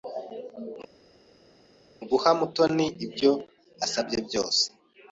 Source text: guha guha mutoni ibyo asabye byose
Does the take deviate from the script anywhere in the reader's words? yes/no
yes